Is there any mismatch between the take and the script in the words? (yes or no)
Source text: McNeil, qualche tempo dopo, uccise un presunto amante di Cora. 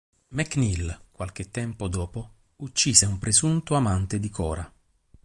no